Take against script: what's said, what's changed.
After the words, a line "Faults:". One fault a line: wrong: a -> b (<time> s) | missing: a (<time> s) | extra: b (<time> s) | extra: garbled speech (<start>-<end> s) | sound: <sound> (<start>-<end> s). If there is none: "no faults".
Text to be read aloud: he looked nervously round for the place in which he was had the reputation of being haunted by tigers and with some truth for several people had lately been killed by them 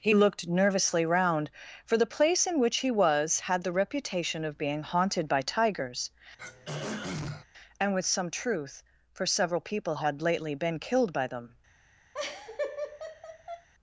he looked nervously round for the place in which he was had the reputation of being haunted by tigers and with some truth for several people had lately been killed by them
Faults:
sound: throat clearing (6.4-7.4 s)
sound: laugh (12.1-13.7 s)